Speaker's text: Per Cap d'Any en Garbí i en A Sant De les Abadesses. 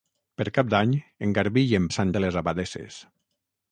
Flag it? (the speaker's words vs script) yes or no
no